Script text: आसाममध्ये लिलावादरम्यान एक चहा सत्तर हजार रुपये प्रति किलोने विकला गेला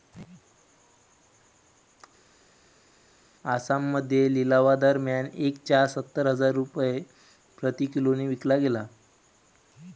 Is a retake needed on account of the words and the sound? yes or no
no